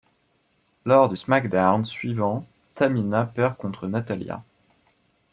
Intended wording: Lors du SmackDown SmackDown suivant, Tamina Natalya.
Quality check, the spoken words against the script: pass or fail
fail